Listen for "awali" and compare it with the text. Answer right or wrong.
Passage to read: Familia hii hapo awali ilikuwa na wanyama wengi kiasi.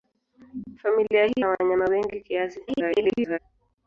wrong